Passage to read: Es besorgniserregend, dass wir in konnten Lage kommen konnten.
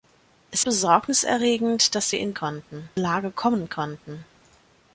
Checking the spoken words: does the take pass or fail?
pass